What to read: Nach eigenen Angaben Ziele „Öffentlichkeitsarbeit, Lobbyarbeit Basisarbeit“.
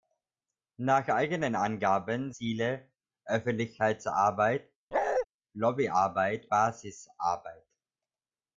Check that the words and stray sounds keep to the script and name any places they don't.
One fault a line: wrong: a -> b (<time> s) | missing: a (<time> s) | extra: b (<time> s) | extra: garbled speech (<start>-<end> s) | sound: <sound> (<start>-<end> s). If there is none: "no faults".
sound: bark (4.9-5.3 s)